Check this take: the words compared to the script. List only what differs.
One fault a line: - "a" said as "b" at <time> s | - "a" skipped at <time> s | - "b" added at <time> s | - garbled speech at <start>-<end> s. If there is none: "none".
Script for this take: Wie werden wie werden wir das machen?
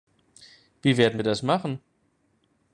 - "wie werden" skipped at 1.2 s